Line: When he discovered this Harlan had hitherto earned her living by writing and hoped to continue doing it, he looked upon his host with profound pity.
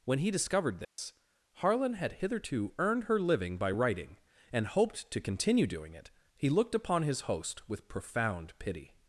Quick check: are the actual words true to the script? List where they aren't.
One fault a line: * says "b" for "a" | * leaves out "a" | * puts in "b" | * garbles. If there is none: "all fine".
all fine